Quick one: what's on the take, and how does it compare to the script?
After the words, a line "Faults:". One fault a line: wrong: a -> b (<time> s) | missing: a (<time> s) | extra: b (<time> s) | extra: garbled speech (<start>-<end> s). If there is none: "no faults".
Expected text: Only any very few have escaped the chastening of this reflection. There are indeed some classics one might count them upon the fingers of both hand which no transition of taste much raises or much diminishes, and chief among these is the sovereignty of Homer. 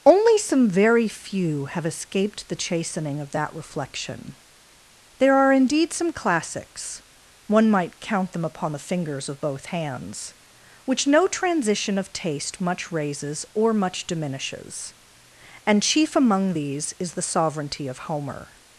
Only some very few have escaped the chastening of that reflection. There are indeed some classics one might count them upon the fingers of both hands which no transition of taste much raises or much diminishes, and chief among these is the sovereignty of Homer.
Faults:
wrong: any -> some (0.4 s)
wrong: this -> that (3.3 s)
wrong: hand -> hands (9.7 s)